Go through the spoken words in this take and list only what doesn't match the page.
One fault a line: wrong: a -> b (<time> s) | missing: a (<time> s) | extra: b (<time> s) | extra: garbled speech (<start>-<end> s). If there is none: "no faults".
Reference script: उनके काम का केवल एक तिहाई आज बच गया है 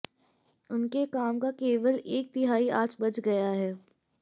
no faults